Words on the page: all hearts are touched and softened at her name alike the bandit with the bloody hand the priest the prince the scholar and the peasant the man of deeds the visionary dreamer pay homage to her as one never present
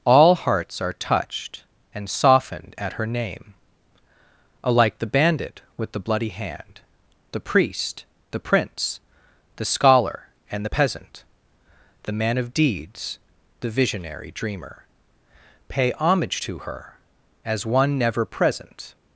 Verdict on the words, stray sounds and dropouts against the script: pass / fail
pass